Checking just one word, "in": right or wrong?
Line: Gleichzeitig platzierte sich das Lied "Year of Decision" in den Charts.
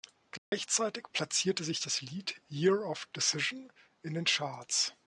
right